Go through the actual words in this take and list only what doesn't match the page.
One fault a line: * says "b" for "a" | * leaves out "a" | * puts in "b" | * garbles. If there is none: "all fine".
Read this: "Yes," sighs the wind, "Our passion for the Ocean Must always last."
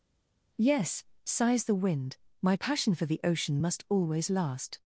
* says "My" for "Our"